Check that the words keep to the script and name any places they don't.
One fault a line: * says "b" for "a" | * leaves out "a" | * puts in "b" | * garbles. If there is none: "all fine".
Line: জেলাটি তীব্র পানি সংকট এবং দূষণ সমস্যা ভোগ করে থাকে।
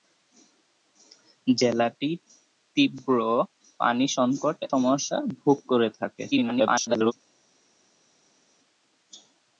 * leaves out "এবং দূষণ"
* garbles